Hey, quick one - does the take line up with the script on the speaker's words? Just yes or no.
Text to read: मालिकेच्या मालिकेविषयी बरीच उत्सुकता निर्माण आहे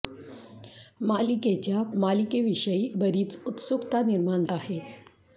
yes